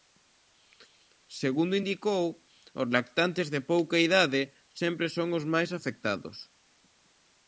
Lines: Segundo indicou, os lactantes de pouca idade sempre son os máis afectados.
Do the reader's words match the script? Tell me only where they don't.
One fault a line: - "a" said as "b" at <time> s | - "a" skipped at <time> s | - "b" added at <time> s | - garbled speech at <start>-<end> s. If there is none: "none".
none